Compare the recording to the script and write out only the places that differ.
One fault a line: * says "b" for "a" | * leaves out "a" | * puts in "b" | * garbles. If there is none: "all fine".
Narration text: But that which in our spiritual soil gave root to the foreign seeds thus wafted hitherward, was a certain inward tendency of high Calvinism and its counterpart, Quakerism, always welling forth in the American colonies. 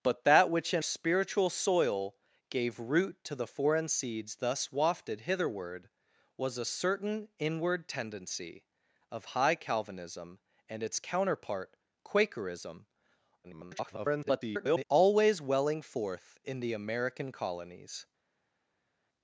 * leaves out "our"
* garbles